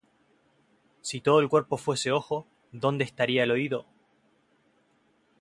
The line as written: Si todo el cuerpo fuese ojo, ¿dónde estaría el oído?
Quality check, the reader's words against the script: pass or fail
pass